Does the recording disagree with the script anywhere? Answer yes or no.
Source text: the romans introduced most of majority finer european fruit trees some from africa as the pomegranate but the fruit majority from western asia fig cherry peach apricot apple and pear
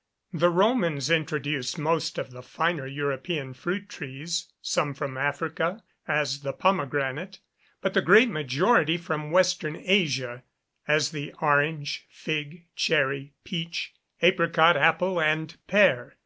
yes